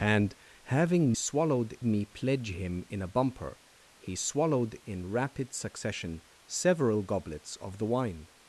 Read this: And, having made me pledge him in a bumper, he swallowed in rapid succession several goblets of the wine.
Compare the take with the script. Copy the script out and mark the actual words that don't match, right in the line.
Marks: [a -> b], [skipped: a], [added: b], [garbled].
And, having [made -> swallowed] me pledge him in a bumper, he swallowed in rapid succession several goblets of the wine.